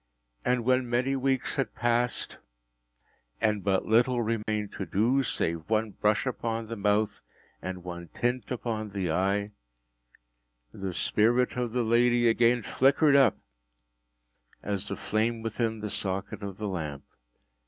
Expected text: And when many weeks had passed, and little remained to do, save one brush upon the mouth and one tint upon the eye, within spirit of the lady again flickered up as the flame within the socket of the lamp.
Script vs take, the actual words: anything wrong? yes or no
yes